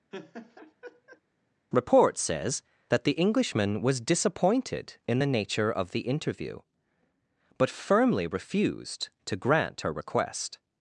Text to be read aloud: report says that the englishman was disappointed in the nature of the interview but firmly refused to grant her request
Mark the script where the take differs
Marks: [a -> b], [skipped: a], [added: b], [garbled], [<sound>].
[laugh] report says that the englishman was disappointed in the nature of the interview but firmly refused to grant her request